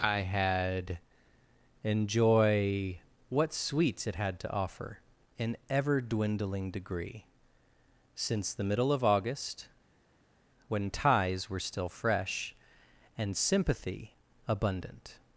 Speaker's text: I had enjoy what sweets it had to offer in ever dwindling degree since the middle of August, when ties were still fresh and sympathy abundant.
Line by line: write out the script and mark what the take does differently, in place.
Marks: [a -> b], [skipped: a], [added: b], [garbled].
I had enjoy what sweets it had to offer in ever dwindling degree since the middle of August, when ties were still fresh and sympathy abundant.